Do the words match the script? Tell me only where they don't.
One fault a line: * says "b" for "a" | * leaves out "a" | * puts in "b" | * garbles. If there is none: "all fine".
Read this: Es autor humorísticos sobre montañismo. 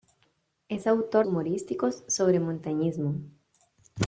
all fine